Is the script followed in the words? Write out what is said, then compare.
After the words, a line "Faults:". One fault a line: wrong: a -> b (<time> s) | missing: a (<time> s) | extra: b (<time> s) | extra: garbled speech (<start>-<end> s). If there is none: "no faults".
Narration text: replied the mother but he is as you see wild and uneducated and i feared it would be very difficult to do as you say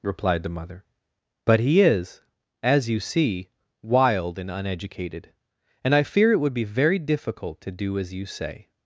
replied the mother but he is as you see wild and uneducated and i fear it would be very difficult to do as you say
Faults:
wrong: feared -> fear (6.0 s)